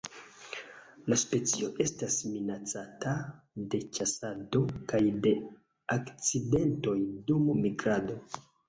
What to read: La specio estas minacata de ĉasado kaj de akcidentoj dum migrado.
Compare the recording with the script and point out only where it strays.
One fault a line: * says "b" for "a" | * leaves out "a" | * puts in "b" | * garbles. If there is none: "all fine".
all fine